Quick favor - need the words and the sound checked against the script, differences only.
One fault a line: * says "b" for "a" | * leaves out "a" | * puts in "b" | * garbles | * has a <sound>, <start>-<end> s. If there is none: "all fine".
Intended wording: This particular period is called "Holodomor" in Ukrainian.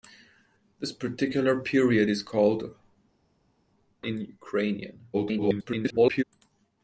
* leaves out "Holodomor"
* garbles